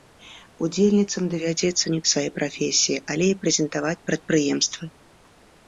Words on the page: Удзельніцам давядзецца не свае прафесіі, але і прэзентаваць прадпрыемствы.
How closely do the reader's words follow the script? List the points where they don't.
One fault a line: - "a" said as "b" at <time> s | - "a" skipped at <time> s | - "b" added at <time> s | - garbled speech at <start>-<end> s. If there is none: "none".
none